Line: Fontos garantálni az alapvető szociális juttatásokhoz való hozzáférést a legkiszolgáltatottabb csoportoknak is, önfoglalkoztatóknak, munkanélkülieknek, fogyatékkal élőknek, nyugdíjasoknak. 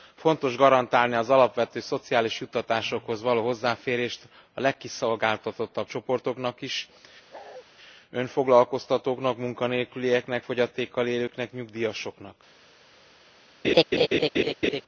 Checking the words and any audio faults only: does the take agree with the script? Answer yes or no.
no